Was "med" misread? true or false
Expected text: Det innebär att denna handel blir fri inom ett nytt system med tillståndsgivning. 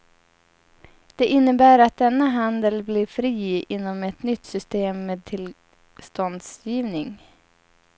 false